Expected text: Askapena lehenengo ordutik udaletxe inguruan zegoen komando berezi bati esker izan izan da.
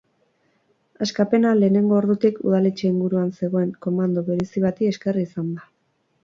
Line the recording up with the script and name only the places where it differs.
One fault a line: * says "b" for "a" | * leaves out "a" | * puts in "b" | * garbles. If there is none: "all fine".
* leaves out "izan"